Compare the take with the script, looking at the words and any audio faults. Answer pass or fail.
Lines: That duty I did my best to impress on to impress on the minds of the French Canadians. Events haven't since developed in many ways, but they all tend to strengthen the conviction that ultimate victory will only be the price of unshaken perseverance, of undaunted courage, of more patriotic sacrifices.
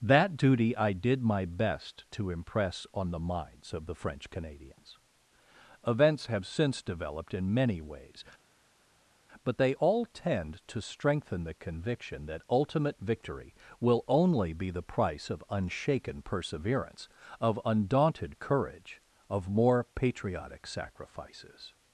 fail